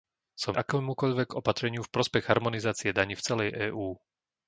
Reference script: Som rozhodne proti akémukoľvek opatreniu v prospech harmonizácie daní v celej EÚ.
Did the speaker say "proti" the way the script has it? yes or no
no